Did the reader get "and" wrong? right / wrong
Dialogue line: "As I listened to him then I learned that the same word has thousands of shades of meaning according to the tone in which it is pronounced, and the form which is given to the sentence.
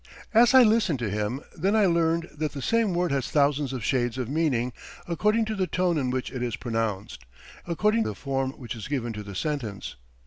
wrong